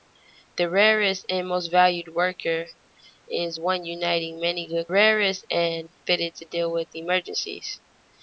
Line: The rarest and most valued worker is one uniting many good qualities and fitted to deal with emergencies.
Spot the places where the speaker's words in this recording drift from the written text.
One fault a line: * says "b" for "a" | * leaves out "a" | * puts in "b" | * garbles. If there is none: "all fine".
* says "rarest" for "qualities"